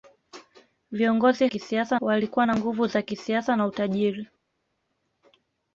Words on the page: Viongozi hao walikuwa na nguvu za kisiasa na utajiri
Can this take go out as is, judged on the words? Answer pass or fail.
fail